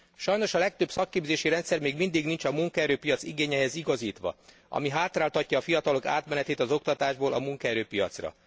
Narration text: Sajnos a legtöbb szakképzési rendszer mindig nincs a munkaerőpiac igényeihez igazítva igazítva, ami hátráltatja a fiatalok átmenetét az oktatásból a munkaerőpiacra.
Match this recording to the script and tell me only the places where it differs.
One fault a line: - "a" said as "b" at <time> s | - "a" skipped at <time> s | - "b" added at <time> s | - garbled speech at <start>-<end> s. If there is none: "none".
- "még" added at 1.8 s
- "igazítva" skipped at 4.3 s